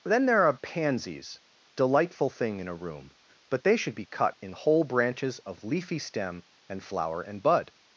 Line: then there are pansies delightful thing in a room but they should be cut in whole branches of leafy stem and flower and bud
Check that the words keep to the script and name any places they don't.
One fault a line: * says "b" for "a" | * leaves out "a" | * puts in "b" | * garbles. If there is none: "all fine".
all fine